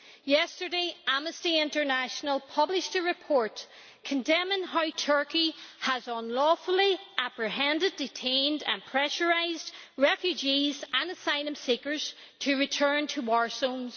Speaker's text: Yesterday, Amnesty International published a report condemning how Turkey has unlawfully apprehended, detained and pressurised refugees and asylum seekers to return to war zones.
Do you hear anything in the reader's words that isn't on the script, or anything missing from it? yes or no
no